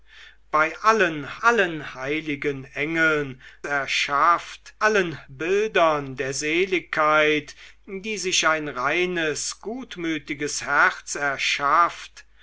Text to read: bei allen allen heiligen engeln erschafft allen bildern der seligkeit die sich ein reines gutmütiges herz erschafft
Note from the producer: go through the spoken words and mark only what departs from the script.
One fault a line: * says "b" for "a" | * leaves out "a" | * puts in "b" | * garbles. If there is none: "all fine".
all fine